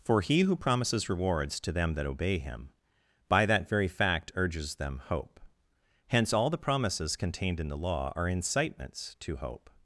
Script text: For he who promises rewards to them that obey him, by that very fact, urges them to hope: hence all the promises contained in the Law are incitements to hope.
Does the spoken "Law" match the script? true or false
true